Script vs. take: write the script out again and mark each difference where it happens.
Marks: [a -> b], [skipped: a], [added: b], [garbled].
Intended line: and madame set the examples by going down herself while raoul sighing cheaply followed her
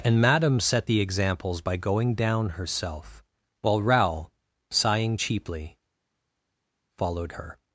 and madame set the examples by going down herself while raoul sighing cheaply followed her